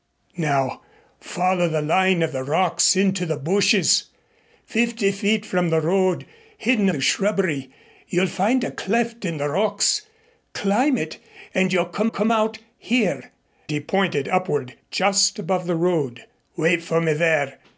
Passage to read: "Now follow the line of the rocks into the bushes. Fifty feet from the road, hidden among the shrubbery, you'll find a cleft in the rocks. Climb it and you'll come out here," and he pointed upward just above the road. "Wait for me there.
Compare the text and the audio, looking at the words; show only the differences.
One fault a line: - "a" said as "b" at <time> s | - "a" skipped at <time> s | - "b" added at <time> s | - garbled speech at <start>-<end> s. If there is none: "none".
- "among" skipped at 6.9 s
- "come" added at 12.0 s
- "and" skipped at 13.3 s